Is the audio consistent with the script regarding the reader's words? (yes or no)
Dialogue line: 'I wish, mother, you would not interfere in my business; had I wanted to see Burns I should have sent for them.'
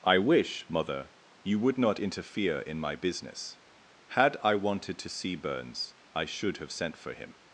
no